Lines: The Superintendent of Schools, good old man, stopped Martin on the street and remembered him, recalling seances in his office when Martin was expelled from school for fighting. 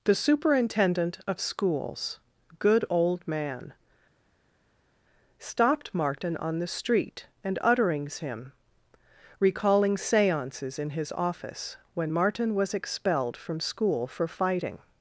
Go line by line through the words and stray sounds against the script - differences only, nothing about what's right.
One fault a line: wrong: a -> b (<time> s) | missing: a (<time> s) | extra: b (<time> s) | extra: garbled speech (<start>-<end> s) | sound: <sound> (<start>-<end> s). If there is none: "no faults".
wrong: remembered -> utterings (7.6 s)